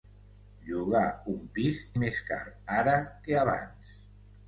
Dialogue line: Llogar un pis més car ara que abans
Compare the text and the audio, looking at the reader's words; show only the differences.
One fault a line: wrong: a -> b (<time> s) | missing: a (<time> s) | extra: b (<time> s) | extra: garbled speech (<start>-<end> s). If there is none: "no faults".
no faults